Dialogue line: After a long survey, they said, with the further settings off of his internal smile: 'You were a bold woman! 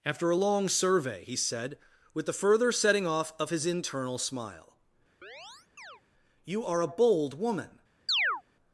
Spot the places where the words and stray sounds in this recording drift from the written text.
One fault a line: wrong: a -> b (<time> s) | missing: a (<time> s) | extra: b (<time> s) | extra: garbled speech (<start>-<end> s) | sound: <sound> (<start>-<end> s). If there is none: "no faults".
wrong: they -> he (1.3 s)
wrong: settings -> setting (2.7 s)
sound: chirp (5.2-6.0 s)
wrong: were -> are (6.7 s)
sound: chirp (8.1-8.4 s)